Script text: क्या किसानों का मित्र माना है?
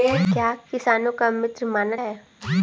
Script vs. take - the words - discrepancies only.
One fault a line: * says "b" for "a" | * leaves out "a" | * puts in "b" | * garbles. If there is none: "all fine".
all fine